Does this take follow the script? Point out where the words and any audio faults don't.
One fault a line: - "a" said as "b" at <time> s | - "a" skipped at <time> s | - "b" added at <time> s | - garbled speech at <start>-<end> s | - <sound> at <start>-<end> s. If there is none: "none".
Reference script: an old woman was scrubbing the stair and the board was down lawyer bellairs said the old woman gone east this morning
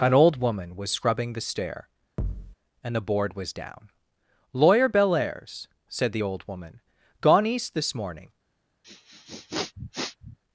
- thud at 2.2-2.6 s
- sniff at 8.8-10.4 s